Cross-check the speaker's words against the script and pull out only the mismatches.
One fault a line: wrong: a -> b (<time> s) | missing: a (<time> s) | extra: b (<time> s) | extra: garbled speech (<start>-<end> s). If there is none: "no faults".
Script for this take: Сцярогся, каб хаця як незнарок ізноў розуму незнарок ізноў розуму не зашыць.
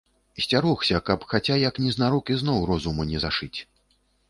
missing: незнарок ізноў розуму (3.0 s)